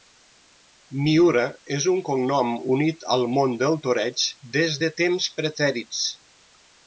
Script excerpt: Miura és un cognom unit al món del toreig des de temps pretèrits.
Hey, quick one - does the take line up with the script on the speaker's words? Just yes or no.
yes